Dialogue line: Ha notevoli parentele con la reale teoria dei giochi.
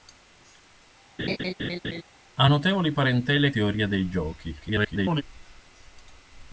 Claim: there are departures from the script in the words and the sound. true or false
true